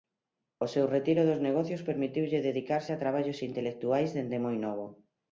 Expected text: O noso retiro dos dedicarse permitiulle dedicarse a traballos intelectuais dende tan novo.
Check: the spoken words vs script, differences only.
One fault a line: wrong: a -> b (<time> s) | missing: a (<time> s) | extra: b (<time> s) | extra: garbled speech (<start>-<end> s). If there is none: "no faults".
wrong: noso -> seu (0.7 s)
wrong: dedicarse -> negocios (1.5 s)
wrong: tan -> moi (4.5 s)